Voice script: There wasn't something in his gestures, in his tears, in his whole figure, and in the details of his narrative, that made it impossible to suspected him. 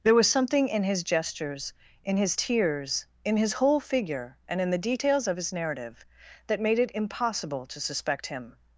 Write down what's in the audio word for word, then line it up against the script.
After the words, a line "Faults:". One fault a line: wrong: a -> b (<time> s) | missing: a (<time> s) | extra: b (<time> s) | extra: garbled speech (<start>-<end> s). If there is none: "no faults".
There was something in his gestures, in his tears, in his whole figure, and in the details of his narrative, that made it impossible to suspect him.
Faults:
wrong: wasn't -> was (0.1 s)
wrong: suspected -> suspect (7.8 s)